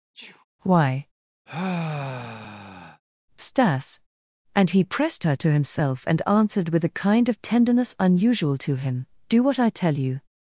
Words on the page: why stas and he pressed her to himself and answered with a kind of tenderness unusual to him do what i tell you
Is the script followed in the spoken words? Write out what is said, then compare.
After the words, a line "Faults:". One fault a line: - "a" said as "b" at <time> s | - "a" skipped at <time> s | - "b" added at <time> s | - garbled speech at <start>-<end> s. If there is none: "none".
why stas and he pressed her to himself and answered with a kind of tenderness unusual to him do what i tell you
Faults:
none